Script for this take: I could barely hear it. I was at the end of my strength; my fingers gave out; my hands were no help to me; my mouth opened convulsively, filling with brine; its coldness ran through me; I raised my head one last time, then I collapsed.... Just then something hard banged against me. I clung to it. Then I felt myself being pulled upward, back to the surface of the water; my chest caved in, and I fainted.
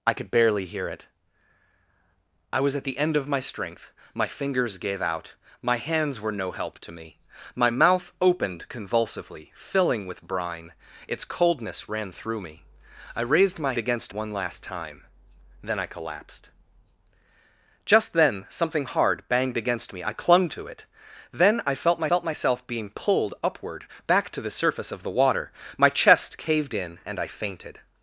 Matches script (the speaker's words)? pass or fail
fail